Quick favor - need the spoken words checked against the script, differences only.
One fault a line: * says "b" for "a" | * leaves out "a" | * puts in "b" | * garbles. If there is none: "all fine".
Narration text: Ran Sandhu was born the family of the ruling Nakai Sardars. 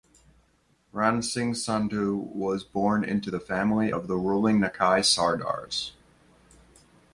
* puts in "Singh"
* puts in "into"